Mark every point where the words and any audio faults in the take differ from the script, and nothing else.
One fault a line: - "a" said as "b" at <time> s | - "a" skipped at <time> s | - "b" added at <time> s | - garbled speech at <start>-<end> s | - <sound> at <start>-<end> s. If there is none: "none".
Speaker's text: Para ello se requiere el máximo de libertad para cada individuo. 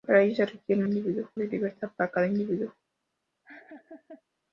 - "máximo" said as "individuo" at 0.8 s
- laugh at 3.4-4.2 s